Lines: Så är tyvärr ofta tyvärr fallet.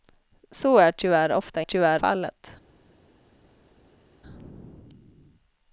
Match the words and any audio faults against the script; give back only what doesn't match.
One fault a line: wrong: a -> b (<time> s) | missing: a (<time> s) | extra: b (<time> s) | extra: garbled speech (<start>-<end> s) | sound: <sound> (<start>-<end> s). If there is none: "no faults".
no faults